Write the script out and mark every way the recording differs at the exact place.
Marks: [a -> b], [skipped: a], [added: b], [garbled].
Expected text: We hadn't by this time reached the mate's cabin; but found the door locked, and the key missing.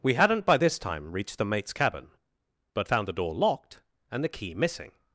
We hadn't by this time reached the mate's cabin; but found the door locked, and the key missing.